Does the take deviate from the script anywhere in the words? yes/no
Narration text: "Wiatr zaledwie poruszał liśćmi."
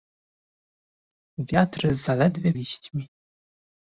yes